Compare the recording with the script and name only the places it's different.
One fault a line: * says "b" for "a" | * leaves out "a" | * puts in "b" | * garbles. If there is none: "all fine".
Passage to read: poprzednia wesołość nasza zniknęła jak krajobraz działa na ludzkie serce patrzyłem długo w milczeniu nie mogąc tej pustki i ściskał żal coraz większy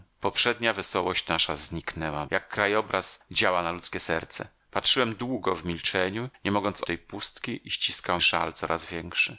all fine